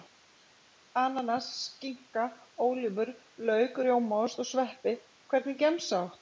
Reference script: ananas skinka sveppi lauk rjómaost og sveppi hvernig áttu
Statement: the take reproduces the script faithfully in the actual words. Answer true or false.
false